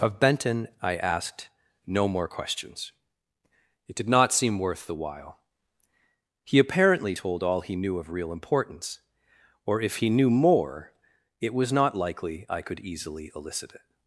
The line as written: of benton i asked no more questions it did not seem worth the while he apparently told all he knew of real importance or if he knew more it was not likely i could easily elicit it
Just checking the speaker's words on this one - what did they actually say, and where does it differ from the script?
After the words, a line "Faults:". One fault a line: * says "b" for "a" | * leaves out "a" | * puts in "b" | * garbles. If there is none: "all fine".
of benton i asked no more questions it did not seem worth the while he apparently told all he knew of real importance or if he knew more it was not likely i could easily elicit it
Faults:
all fine